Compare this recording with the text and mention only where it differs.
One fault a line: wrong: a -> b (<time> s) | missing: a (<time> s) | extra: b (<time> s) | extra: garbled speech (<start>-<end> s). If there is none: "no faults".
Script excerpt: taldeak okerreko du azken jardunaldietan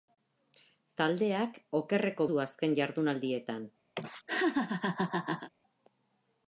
no faults